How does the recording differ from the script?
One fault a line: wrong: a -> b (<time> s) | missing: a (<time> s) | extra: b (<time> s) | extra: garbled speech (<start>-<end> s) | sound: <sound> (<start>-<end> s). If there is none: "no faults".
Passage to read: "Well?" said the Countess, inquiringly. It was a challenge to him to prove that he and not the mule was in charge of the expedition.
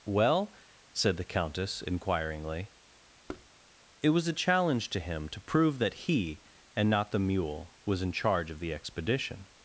sound: thud (3.3-3.5 s)